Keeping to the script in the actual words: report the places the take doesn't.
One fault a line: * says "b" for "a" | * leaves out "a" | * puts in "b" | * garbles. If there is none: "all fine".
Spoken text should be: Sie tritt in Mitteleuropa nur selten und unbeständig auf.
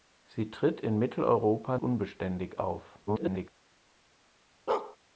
* leaves out "nur selten und"
* garbles